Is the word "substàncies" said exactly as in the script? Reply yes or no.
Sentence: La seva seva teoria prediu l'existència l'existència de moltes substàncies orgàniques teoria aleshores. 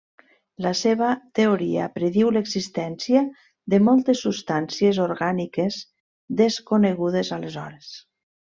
yes